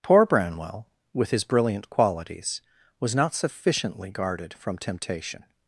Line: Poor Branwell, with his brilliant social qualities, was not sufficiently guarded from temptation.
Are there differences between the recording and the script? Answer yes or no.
yes